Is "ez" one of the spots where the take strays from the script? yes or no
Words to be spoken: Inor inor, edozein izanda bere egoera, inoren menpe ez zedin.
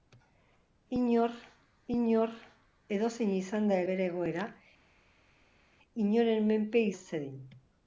no